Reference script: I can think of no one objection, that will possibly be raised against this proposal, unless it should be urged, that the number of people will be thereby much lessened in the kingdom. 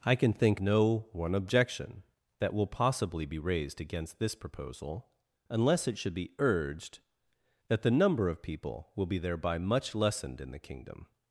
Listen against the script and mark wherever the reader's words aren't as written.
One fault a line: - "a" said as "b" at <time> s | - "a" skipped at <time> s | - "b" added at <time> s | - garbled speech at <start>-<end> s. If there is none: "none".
- "of" skipped at 0.6 s